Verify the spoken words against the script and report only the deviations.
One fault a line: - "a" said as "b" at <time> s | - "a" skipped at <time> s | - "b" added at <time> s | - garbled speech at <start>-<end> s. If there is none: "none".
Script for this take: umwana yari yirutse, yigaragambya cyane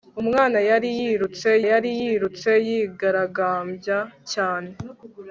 - "yari yirutse" added at 1.7 s